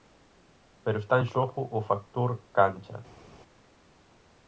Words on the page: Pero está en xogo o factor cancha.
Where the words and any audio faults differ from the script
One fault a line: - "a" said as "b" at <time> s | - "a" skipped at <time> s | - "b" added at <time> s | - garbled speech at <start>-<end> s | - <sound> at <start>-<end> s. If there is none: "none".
none